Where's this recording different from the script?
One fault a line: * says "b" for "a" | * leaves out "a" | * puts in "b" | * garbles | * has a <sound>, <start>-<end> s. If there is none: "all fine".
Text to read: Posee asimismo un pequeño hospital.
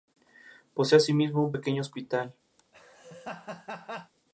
* has a laugh, 2.6-4.1 s